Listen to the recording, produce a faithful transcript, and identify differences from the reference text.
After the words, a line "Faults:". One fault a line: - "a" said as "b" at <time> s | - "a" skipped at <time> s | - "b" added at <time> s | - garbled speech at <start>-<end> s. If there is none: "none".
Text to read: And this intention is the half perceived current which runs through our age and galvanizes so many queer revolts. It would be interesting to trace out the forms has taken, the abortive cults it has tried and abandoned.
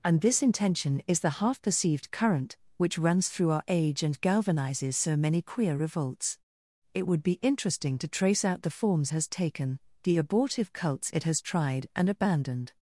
And this intention is the half perceived current which runs through our age and galvanizes so many queer revolts. It would be interesting to trace out the forms has taken, the abortive cults it has tried and abandoned.
Faults:
none